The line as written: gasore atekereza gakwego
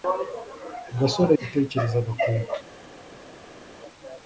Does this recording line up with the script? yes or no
yes